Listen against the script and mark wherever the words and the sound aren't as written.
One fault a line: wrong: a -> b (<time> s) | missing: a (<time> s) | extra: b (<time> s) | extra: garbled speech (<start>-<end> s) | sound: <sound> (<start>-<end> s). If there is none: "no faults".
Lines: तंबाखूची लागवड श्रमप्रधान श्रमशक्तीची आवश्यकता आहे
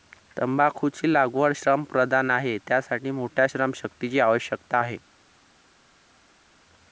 extra: आहे त्यासाठी मोठ्या (2.3 s)